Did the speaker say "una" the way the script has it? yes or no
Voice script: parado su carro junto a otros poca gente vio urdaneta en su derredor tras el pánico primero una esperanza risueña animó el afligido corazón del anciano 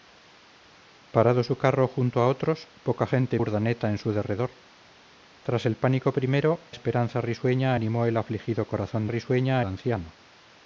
no